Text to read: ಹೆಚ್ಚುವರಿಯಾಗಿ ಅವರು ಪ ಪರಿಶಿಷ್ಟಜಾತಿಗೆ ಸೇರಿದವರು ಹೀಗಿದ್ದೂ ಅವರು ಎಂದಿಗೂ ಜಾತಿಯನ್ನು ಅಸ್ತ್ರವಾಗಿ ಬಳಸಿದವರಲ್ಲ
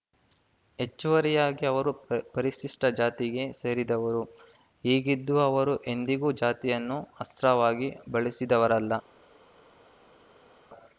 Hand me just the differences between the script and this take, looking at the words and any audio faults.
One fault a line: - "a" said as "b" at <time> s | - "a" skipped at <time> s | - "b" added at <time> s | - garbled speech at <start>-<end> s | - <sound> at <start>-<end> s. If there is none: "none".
none